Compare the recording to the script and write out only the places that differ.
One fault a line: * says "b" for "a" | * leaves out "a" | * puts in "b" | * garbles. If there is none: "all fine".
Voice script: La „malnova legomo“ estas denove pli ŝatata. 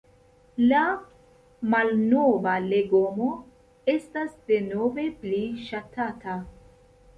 all fine